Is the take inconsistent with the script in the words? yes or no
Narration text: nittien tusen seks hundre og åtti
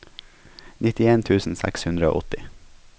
no